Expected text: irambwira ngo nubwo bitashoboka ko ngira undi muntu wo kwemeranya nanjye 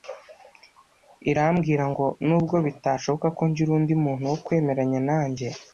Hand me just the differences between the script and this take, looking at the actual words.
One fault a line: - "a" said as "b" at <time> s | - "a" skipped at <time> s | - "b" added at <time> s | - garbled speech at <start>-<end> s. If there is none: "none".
none